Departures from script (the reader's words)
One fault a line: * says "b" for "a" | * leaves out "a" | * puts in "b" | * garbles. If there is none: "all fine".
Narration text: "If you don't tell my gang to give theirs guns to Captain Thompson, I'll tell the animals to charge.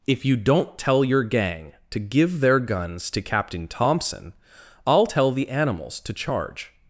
* says "your" for "my"
* says "their" for "theirs"